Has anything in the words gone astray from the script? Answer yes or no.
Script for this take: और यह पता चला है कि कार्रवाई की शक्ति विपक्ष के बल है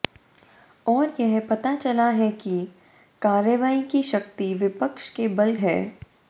no